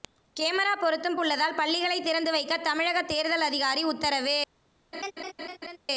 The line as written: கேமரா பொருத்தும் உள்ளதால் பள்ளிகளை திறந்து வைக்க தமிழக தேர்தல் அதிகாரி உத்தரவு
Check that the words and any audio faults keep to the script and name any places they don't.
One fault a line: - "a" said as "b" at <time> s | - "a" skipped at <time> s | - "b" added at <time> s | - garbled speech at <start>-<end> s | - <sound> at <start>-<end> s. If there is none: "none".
- laugh at 4.9-5.8 s